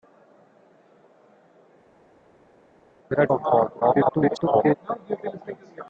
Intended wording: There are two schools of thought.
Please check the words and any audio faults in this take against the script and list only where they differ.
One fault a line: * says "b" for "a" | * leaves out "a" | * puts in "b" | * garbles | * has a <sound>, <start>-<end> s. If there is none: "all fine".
* leaves out "two schools"
* garbles